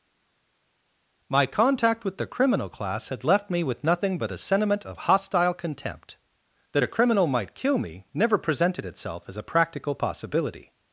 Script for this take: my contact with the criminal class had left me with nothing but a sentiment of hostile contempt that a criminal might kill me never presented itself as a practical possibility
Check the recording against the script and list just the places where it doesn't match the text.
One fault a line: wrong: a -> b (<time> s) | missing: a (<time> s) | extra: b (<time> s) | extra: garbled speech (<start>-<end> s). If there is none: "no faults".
no faults